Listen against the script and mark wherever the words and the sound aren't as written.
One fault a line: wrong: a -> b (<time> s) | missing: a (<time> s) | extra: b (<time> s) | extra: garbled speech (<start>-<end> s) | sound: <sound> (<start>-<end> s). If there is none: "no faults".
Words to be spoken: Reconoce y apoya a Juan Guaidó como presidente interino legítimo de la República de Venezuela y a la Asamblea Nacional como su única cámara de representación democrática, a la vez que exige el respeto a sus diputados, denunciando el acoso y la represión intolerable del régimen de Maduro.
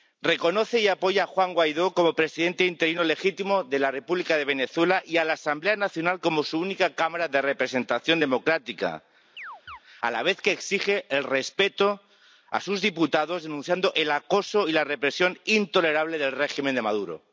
sound: chirp (9.4-9.8 s)